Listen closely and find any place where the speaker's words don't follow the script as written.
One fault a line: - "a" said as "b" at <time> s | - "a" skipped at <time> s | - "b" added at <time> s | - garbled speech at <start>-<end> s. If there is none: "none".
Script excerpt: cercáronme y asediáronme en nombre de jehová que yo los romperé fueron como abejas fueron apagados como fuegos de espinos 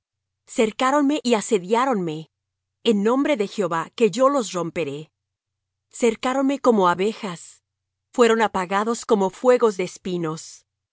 - "fueron" said as "cercáronme" at 5.9 s